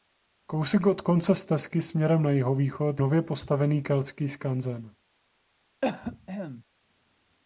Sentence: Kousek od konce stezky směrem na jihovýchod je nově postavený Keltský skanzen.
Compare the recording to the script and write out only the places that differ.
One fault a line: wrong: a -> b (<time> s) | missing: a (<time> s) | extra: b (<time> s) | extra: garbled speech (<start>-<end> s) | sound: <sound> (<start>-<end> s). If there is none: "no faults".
missing: je (3.0 s)
sound: cough (5.8-6.6 s)